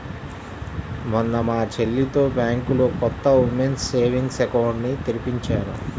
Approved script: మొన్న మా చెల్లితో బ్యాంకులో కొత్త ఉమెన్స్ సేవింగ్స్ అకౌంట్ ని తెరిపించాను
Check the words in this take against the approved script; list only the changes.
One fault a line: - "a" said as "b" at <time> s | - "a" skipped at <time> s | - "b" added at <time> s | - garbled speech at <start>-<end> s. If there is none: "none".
none